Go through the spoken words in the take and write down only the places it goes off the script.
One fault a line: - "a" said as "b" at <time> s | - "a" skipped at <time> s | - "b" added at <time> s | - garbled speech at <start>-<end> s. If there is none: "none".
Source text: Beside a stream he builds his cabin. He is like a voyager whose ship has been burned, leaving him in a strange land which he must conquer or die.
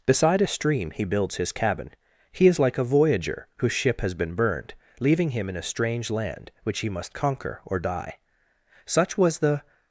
- "Such was the" added at 8.8 s